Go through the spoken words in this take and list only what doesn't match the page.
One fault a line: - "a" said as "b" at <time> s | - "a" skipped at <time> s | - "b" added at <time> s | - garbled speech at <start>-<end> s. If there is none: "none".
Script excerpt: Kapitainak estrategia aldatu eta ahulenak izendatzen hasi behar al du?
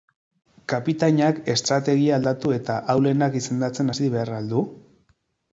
none